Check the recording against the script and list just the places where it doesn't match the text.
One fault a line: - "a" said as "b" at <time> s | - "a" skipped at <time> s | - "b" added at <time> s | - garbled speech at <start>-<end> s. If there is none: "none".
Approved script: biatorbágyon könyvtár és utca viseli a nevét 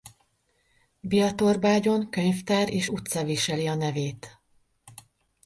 none